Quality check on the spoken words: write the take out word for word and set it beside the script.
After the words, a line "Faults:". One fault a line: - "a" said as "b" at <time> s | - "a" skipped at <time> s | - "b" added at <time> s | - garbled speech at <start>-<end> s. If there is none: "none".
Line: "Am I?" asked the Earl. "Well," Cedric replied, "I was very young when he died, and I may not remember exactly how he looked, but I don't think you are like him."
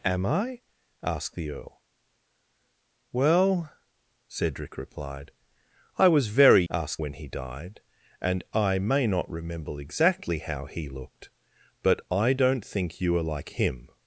"Am I?" asked the Earl. "Well," Cedric replied, "I was very asked when he died, and I may not remember exactly how he looked, but I don't think you are like him."
Faults:
- "young" said as "asked" at 6.7 s